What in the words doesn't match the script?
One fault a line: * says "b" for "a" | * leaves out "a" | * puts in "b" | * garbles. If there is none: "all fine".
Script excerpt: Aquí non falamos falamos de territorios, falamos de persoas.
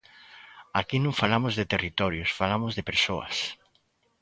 * leaves out "falamos"